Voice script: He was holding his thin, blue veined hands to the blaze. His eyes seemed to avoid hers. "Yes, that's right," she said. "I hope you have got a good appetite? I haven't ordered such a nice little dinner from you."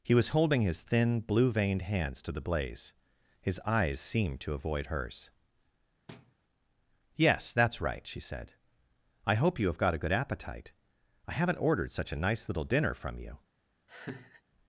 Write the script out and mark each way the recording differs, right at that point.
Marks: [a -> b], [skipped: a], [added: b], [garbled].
He was holding his thin, blue veined hands to the blaze. His eyes seemed to avoid hers. "Yes, that's right," she said. "I hope you have got a good appetite? I haven't ordered such a nice little dinner from you."